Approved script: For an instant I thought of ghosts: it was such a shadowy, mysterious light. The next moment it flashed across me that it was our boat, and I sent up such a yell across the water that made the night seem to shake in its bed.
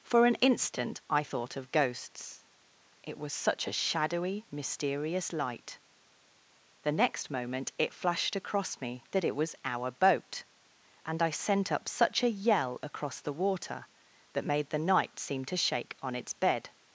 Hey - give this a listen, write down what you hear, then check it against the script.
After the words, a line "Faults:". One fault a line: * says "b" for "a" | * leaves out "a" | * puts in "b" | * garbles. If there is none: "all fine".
For an instant I thought of ghosts: it was such a shadowy, mysterious light. The next moment it flashed across me that it was our boat, and I sent up such a yell across the water that made the night seem to shake on its bed.
Faults:
* says "on" for "in"